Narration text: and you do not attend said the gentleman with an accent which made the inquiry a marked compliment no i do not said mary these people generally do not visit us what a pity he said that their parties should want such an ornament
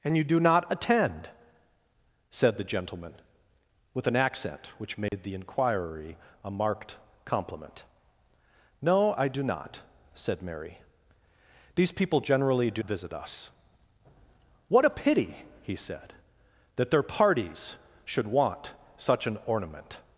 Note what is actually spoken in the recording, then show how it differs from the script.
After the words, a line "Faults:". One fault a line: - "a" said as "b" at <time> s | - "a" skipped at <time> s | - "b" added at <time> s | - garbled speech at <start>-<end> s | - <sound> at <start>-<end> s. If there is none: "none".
and you do not attend said the gentleman with an accent which made the inquiry a marked compliment no i do not said mary these people generally do visit us what a pity he said that their parties should want such an ornament
Faults:
- dropout at 5.1-5.1 s
- "not" skipped at 12.8 s